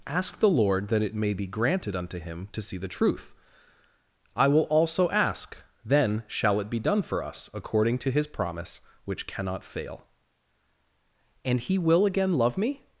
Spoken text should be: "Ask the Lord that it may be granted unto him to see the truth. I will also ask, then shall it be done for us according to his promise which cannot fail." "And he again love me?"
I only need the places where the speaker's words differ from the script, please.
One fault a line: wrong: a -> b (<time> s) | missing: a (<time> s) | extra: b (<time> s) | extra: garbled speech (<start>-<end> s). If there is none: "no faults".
extra: will (11.8 s)